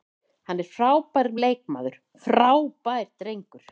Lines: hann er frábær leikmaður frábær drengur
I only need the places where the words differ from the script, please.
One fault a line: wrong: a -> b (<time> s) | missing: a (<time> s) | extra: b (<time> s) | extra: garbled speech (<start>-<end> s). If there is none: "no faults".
no faults